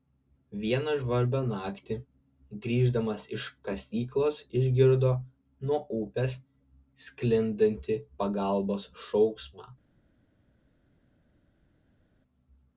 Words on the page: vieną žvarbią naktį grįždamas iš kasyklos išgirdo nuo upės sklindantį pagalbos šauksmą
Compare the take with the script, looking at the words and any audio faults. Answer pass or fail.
pass